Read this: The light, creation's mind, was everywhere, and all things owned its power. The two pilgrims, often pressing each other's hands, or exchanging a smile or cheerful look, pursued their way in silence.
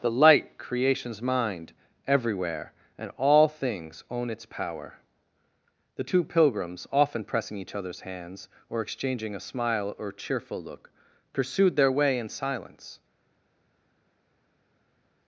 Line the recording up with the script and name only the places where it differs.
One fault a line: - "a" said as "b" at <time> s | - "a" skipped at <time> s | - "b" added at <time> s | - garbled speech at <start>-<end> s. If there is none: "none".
- "was" skipped at 1.7 s
- "owned" said as "own" at 4.1 s